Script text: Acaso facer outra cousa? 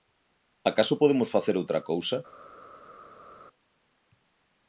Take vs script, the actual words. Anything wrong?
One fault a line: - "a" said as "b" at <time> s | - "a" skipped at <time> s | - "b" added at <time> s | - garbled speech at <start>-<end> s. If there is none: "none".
- "podemos" added at 1.0 s